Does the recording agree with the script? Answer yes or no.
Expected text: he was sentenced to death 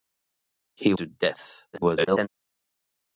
no